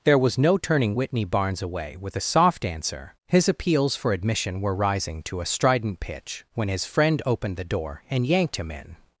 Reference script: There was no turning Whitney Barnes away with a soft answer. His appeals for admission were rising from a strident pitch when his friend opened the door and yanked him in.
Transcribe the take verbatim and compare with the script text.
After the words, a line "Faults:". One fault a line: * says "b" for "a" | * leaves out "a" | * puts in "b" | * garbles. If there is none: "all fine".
There was no turning Whitney Barnes away with a soft answer. His appeals for admission were rising to a strident pitch when his friend opened the door and yanked him in.
Faults:
* says "to" for "from"